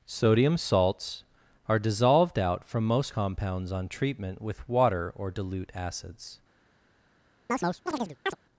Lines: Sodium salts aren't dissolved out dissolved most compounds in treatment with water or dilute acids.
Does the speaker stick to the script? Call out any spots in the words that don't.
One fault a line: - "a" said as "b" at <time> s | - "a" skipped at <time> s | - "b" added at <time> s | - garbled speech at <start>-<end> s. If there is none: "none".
- "aren't" said as "are" at 1.7 s
- "dissolved" said as "from" at 2.6 s
- "in" said as "on" at 3.7 s